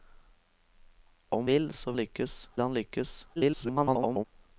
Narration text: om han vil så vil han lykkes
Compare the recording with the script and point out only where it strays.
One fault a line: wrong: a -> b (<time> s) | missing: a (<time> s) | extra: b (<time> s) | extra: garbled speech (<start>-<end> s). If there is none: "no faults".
missing: han (1.5 s)
wrong: vil -> lykkes (2.0 s)
extra: garbled speech (3.4-4.2 s)